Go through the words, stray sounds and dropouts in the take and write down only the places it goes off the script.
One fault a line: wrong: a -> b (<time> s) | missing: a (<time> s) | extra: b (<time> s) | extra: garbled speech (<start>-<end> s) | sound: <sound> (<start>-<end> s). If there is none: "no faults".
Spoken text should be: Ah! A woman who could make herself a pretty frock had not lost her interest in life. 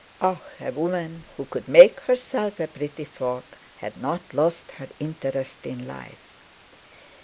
no faults